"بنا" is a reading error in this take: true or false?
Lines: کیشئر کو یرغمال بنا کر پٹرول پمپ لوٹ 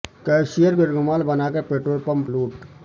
false